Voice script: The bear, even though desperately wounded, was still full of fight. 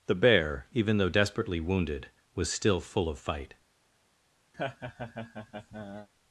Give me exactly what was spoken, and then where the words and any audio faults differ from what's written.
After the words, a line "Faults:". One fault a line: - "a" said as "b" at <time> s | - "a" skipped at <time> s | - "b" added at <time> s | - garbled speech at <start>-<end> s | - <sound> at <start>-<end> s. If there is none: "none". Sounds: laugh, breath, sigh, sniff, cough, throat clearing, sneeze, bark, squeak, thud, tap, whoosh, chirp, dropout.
The bear, even though desperately wounded, was still full of fight.
Faults:
- laugh at 4.5-6.1 s